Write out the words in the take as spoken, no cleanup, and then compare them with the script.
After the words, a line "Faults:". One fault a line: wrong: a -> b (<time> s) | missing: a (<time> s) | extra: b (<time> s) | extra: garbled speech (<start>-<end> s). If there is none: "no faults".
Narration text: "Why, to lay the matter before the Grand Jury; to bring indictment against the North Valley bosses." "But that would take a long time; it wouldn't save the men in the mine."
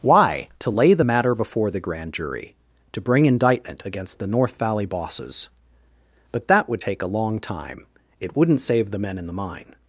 "Why, to lay the matter before the Grand Jury; to bring indictment against the North Valley bosses." "But that would take a long time; it wouldn't save the men in the mine."
Faults:
no faults